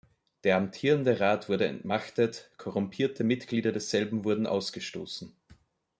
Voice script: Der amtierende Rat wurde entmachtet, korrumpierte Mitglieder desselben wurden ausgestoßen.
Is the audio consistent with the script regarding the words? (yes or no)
yes